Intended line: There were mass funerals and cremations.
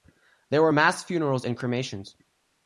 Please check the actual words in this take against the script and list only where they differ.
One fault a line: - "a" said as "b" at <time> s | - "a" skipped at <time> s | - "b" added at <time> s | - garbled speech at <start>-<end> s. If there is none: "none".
none